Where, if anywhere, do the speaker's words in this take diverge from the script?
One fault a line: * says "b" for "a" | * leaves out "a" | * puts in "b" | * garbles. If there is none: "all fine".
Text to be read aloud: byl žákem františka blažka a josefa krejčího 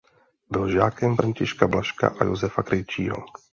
all fine